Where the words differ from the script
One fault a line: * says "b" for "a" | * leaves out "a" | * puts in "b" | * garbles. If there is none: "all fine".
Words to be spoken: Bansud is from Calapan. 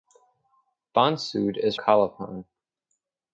* leaves out "from"